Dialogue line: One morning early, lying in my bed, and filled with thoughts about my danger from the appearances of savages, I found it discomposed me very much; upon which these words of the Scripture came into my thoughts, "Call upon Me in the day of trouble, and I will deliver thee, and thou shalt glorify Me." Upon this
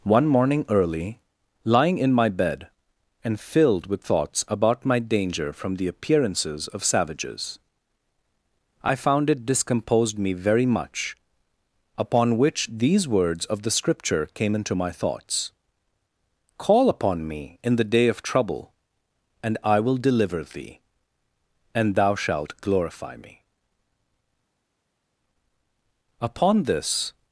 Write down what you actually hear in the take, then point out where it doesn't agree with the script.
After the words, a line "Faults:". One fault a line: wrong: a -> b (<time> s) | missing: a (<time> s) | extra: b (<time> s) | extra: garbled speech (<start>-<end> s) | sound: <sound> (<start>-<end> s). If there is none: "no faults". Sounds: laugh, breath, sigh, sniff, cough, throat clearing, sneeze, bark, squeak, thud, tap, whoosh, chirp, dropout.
One morning early, lying in my bed, and filled with thoughts about my danger from the appearances of savages, I found it discomposed me very much; upon which these words of the Scripture came into my thoughts, "Call upon Me in the day of trouble, and I will deliver thee, and thou shalt glorify Me." Upon this
Faults:
no faults